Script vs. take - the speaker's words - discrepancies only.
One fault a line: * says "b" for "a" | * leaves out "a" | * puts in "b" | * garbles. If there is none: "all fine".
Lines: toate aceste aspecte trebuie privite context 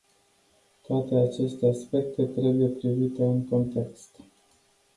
* puts in "în"